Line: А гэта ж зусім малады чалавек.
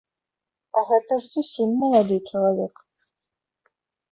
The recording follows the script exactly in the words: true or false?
true